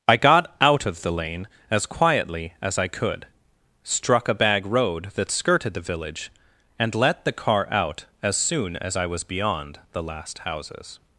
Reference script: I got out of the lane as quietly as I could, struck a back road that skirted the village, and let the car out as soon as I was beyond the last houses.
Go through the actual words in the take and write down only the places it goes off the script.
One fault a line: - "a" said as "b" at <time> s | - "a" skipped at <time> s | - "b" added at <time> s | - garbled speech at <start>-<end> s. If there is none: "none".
- "back" said as "bag" at 4.3 s